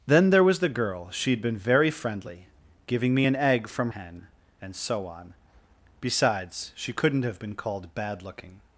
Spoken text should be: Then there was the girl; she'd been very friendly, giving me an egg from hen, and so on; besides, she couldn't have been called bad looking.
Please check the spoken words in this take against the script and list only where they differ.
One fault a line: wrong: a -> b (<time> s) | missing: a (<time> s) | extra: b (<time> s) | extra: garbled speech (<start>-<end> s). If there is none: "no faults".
no faults